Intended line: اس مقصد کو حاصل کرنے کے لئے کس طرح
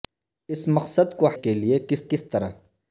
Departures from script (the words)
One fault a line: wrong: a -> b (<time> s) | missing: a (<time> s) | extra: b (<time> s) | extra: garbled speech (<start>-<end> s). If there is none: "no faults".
missing: حاصل کرنے (1.3 s)
extra: کس (2.1 s)